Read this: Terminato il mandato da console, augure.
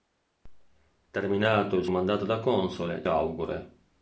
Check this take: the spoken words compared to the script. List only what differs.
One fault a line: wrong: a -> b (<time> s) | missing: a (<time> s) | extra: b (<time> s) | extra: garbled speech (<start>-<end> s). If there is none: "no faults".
no faults